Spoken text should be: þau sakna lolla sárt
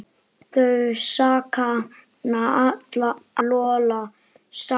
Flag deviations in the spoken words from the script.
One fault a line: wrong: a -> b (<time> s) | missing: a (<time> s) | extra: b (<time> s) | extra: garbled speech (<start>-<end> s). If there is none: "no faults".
no faults